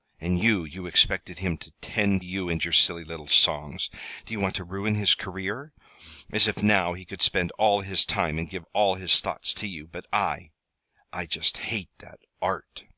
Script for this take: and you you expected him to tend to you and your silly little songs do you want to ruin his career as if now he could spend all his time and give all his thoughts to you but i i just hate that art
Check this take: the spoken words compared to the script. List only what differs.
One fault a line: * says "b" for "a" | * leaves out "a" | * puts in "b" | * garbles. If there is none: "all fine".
* leaves out "to"